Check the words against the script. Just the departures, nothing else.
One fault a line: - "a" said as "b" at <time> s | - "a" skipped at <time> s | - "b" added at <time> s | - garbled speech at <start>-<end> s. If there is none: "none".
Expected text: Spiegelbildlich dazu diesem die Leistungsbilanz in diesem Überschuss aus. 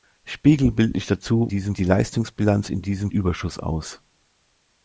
none